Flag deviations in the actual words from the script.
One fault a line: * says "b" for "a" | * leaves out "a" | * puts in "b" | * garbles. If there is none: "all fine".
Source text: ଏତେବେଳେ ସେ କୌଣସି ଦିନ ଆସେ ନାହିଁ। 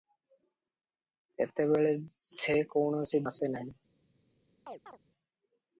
* leaves out "ଦିନ"